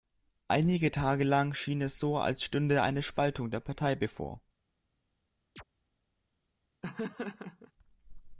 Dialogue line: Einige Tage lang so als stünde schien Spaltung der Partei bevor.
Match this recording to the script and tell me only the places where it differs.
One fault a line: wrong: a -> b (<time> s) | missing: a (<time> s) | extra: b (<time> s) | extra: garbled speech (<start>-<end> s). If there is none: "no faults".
extra: schien es (1.5 s)
wrong: schien -> eine (2.8 s)